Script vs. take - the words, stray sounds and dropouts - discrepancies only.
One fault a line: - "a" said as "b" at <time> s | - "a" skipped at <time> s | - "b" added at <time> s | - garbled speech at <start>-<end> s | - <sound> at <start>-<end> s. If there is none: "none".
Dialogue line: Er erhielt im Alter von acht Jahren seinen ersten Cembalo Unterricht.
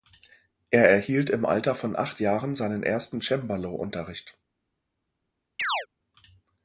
- chirp at 5.6-5.9 s